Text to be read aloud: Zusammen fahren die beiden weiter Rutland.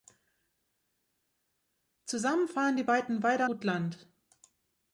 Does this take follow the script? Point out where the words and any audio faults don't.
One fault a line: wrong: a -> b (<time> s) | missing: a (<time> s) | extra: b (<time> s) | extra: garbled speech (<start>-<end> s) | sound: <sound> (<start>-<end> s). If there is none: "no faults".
no faults